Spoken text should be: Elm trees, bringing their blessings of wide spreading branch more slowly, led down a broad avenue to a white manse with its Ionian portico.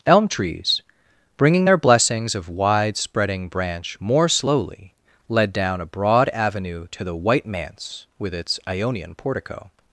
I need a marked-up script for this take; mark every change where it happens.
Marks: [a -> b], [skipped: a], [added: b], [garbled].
Elm trees, bringing their blessings of wide spreading branch more slowly, led down a broad avenue to [a -> the] white manse with its Ionian portico.